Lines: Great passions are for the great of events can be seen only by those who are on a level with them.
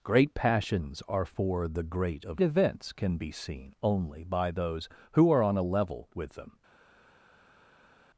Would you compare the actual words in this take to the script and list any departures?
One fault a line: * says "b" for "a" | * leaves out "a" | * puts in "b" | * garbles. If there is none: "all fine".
all fine